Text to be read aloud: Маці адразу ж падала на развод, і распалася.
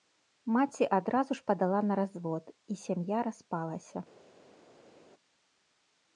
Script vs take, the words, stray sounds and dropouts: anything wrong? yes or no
yes